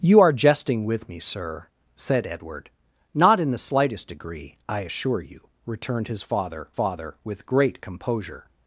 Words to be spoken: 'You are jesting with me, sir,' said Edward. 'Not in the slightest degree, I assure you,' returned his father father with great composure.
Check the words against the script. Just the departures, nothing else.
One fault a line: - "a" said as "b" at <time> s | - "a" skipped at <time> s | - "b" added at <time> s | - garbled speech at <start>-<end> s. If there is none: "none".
none